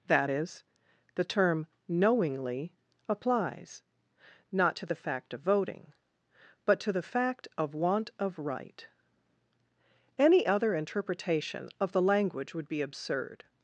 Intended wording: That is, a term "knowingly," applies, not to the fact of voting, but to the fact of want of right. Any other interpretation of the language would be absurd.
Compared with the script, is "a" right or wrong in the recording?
wrong